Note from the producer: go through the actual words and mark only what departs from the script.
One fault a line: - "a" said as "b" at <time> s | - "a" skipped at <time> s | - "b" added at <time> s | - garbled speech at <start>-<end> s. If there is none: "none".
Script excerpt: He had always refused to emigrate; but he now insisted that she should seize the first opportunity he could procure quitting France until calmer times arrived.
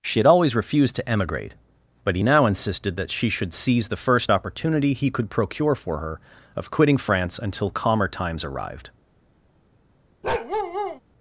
- "He" said as "She" at 0.0 s
- "for her of" added at 5.7 s